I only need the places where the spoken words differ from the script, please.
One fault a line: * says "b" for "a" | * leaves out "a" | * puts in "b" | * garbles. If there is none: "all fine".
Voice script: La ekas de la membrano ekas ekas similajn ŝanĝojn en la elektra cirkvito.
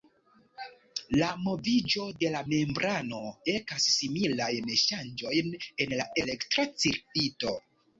* says "moviĝo" for "ekas"
* leaves out "ekas"